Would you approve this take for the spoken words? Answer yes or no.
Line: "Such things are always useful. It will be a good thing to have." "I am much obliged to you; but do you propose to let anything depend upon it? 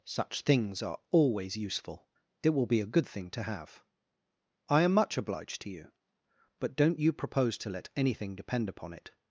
no